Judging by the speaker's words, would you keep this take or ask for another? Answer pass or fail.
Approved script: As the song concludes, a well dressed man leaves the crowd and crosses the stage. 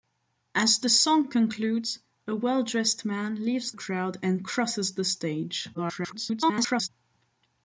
fail